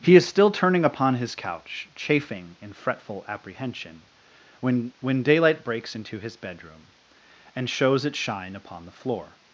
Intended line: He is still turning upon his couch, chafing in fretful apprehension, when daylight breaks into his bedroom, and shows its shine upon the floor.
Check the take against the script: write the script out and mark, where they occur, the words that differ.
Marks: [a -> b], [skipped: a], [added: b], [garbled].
He is still turning upon his couch, chafing in fretful apprehension, when [added: when] daylight breaks into his bedroom, and shows its shine upon the floor.